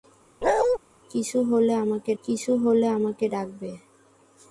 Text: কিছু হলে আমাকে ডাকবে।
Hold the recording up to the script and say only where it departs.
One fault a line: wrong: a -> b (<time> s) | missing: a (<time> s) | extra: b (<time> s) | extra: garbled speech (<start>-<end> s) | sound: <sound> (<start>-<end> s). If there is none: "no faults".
sound: bark (0.4-0.8 s)
extra: কিছু হলে আমাকে (2.2 s)